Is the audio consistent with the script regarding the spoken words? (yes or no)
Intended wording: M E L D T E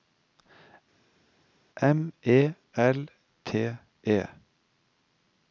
no